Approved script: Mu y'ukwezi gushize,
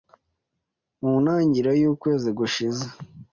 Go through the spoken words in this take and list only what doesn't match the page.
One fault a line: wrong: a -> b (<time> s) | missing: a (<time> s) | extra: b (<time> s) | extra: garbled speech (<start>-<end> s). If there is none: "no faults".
extra: ntangiriro (1.2 s)